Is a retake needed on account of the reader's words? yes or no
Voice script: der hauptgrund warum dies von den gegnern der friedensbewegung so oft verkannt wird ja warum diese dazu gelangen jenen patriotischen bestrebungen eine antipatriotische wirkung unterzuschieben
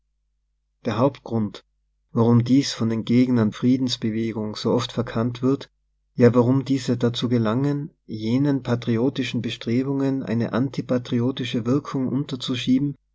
yes